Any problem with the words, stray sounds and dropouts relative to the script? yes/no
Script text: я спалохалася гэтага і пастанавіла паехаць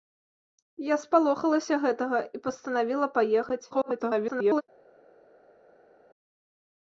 yes